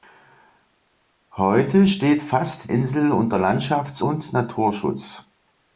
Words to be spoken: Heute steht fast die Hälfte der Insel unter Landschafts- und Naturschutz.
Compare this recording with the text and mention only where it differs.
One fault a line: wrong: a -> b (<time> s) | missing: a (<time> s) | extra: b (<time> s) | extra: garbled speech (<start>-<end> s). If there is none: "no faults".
missing: die Hälfte der (2.7 s)